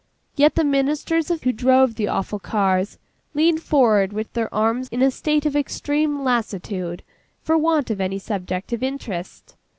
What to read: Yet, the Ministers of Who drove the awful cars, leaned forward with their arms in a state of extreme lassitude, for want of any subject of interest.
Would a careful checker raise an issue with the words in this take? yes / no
no